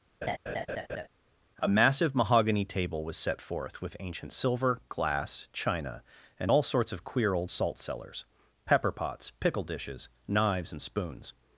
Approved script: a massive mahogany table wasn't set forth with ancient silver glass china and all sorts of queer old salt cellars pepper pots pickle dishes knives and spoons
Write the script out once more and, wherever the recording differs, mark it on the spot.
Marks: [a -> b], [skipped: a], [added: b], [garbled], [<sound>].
[laugh] a massive mahogany table [wasn't -> was] set forth with ancient silver glass china and all sorts of queer old salt cellars pepper pots pickle dishes knives and spoons